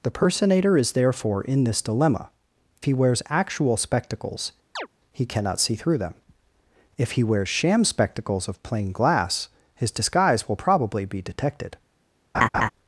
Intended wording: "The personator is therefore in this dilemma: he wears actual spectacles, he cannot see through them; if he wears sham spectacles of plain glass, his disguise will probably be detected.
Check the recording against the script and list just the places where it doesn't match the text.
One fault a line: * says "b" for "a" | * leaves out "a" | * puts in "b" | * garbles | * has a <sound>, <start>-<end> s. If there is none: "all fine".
* has a chirp, 4.8-4.9 s
* has a laugh, 12.3-12.7 s